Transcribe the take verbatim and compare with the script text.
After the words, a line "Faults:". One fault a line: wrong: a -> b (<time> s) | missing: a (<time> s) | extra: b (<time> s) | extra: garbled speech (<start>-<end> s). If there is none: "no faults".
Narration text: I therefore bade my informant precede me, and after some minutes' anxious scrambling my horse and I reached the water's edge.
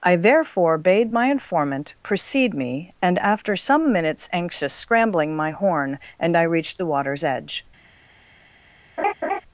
I therefore bade my informant precede me, and after some minutes' anxious scrambling my horn and I reached the water's edge.
Faults:
wrong: horse -> horn (5.5 s)